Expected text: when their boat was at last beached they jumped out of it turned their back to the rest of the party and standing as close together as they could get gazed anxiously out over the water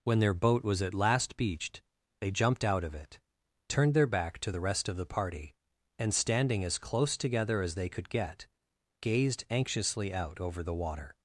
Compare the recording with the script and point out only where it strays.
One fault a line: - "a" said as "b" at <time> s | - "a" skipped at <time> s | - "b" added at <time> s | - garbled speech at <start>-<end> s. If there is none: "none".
none